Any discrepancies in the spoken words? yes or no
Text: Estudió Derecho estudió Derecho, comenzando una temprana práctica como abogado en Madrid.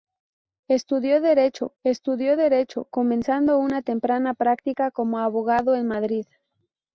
no